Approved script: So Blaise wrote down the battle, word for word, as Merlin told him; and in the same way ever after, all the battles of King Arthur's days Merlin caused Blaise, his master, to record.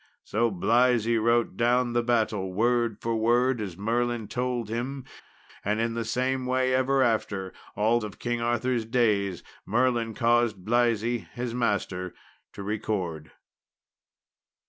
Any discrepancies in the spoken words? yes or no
yes